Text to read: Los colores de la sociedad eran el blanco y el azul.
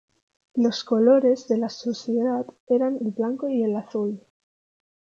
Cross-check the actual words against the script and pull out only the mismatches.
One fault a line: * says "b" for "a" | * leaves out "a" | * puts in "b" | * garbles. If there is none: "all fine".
all fine